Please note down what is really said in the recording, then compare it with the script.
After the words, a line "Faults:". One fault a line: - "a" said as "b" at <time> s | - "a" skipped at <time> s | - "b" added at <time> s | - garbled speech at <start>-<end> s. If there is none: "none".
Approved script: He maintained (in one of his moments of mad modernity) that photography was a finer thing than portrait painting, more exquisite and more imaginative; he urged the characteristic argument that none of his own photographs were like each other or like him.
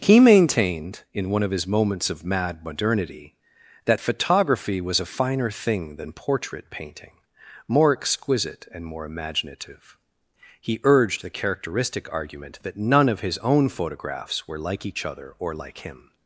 He maintained (in one of his moments of mad modernity) that photography was a finer thing than portrait painting, more exquisite and more imaginative; he urged the characteristic argument that none of his own photographs were like each other or like him.
Faults:
none